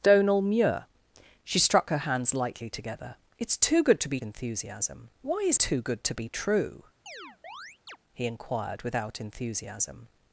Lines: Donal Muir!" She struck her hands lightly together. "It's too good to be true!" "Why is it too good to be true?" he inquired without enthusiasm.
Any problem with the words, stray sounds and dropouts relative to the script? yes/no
yes